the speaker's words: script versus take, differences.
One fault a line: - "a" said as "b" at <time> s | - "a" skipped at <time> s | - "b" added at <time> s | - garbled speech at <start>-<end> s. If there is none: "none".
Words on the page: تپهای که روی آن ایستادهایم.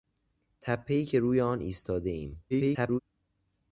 - garbled speech at 2.5-3.0 s